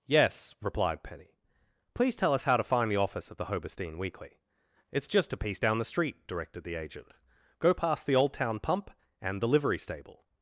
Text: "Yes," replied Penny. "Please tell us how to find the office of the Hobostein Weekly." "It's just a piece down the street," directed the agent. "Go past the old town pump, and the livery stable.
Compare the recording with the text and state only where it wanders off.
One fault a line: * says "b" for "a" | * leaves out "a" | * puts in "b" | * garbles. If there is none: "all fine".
all fine